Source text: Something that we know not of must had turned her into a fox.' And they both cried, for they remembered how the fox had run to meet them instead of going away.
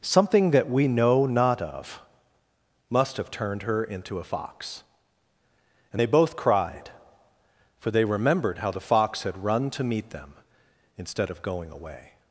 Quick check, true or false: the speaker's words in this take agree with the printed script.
false